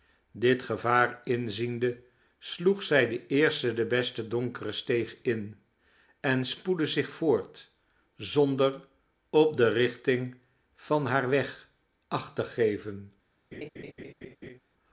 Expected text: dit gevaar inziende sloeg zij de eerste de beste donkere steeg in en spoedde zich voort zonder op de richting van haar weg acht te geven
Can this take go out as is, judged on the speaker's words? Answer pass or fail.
pass